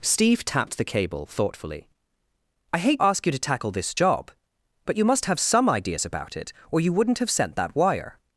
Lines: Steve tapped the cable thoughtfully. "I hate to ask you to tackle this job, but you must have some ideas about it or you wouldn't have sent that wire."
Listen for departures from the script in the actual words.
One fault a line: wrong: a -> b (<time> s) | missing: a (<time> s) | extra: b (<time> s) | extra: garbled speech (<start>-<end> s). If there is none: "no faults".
missing: to (3.0 s)